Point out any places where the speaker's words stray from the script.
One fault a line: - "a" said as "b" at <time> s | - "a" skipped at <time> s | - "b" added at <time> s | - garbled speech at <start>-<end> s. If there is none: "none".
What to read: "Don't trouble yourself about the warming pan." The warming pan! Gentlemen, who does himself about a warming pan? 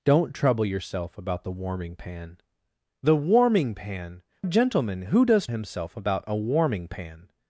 none